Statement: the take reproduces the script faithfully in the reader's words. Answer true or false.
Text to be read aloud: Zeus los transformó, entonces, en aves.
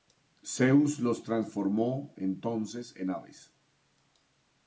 true